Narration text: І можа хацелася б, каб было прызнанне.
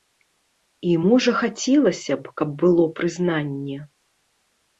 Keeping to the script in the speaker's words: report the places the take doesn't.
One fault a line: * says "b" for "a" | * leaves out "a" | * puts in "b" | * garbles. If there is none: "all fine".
all fine